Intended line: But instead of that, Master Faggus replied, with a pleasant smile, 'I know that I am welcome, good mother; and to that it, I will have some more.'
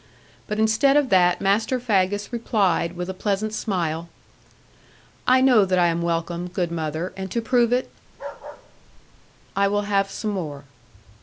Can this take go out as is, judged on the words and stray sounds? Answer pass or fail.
fail